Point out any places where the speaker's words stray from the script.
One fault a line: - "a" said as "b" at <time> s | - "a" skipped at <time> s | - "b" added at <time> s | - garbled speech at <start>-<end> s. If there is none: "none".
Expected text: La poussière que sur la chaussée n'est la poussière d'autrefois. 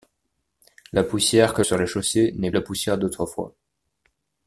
none